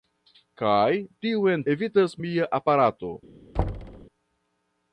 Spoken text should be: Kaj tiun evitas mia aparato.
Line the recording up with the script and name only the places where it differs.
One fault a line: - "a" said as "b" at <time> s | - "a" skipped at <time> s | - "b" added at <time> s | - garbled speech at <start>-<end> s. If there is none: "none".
none